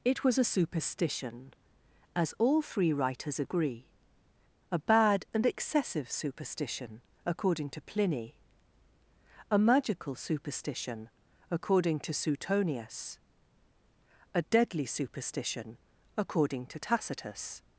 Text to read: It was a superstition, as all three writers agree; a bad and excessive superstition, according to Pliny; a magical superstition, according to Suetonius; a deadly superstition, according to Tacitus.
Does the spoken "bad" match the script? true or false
true